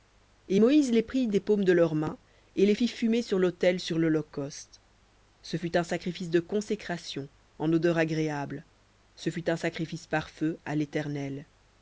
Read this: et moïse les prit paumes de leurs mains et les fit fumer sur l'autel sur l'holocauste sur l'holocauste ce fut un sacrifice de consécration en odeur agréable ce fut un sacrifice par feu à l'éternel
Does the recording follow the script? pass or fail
fail